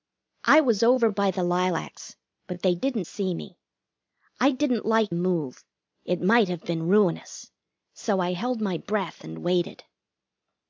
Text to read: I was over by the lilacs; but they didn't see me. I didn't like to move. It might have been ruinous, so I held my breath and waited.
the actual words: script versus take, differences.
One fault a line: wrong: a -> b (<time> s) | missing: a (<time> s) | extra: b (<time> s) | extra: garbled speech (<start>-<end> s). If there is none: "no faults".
missing: to (5.1 s)